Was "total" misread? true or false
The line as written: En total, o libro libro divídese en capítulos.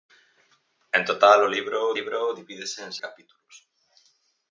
false